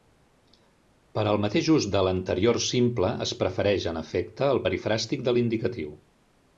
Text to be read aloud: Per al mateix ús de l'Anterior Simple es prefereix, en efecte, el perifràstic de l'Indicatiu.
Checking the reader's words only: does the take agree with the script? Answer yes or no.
yes